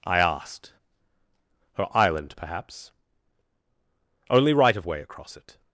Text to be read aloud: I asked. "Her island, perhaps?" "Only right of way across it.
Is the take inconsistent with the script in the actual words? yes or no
no